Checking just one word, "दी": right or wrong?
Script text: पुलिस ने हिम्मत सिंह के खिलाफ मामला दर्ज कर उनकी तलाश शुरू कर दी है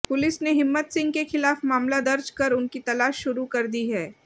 right